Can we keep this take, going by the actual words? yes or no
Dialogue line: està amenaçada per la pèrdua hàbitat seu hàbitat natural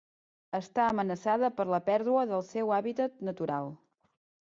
no